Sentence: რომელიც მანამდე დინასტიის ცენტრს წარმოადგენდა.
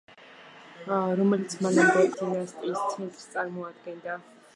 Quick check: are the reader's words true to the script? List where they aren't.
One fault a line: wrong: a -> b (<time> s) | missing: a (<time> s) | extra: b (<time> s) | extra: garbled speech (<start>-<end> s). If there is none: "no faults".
no faults